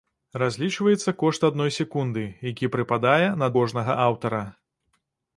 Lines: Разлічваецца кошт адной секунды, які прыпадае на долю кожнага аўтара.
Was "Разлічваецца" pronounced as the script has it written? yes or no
yes